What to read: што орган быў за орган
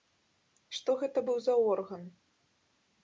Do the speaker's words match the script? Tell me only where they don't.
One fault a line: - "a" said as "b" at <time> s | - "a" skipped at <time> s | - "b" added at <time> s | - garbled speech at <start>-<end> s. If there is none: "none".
- "орган" said as "гэта" at 1.0 s